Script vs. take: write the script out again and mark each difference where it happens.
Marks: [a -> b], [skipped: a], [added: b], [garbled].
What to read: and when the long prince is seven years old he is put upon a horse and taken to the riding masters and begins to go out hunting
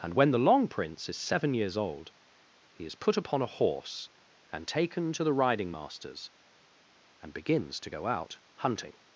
and when the long prince is seven years old he is put upon a horse and taken to the riding masters and begins to go out hunting